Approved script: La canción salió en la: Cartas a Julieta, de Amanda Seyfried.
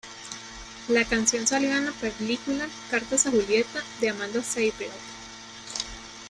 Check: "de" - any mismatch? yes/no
no